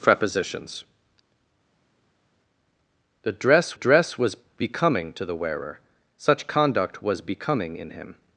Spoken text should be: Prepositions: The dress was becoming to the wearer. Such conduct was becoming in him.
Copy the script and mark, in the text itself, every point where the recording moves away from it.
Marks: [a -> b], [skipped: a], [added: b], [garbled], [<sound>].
Prepositions: The dress [added: dress] was becoming to the wearer. Such conduct was becoming in him.